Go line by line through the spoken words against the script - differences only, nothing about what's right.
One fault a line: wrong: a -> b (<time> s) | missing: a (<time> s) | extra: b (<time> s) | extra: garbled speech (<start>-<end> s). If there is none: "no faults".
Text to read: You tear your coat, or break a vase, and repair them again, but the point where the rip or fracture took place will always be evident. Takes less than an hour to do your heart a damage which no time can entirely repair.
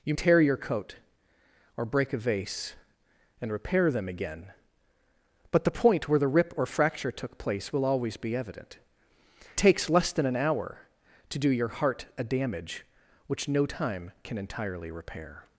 no faults